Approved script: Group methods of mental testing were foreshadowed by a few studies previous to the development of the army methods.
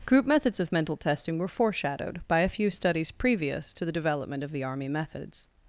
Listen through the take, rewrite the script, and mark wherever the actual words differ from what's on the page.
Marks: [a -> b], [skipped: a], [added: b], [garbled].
Group methods of mental testing were foreshadowed by a few studies previous to the development of the army methods.